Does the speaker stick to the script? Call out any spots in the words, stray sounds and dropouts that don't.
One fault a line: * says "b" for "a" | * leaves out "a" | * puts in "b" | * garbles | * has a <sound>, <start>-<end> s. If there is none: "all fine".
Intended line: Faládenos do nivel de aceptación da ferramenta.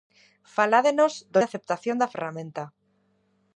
* leaves out "nivel"